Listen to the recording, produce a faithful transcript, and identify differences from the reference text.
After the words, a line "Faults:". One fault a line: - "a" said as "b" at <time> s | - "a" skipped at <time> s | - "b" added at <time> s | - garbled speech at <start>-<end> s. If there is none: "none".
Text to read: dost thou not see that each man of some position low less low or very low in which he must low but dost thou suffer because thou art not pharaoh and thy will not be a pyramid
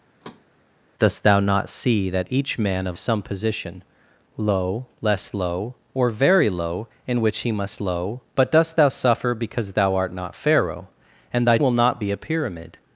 dost thou not see that each man of some position low less low or very low in which he must low but dost thou suffer because thou art not pharaoh and thy will not be a pyramid
Faults:
none